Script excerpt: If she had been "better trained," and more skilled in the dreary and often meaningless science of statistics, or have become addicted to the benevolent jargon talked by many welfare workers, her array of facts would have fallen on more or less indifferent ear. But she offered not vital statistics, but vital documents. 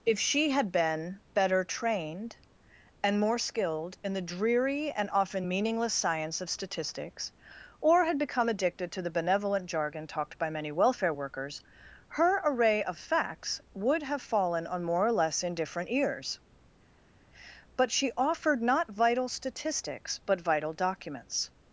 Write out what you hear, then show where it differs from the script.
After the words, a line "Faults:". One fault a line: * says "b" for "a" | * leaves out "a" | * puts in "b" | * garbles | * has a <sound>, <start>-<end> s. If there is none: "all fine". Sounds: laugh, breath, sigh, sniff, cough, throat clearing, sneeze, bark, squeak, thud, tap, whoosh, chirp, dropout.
If she had been "better trained," and more skilled in the dreary and often meaningless science of statistics, or had become addicted to the benevolent jargon talked by many welfare workers, her array of facts would have fallen on more or less indifferent ears. But she offered not vital statistics, but vital documents.
Faults:
* says "had" for "have"
* says "ears" for "ear"